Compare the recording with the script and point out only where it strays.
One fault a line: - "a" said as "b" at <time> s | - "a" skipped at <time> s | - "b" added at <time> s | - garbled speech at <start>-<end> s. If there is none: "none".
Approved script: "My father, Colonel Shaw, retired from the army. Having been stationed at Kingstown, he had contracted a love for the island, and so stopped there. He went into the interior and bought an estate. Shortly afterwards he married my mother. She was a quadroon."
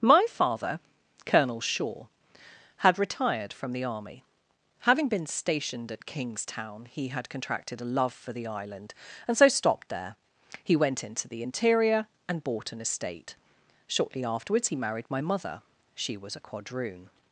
- "had" added at 2.8 s